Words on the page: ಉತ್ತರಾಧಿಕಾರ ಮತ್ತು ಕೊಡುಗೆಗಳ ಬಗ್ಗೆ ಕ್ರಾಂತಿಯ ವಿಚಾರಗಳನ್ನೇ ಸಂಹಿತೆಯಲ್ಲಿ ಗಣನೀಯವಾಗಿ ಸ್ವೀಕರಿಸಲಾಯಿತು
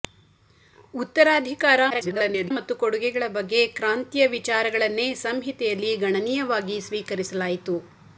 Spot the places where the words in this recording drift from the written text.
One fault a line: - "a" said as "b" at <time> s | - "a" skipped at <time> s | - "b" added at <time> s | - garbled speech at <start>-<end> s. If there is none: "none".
- garbled speech at 1.9-2.5 s